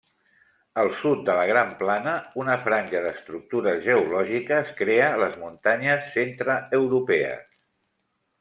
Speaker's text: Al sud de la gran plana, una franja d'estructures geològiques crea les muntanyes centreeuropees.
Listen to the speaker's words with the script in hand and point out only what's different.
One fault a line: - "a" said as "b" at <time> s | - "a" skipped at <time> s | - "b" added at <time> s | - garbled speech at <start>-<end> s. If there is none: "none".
none